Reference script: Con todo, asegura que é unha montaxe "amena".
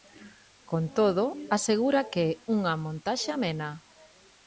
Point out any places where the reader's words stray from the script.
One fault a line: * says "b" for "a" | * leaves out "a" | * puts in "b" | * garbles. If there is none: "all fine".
all fine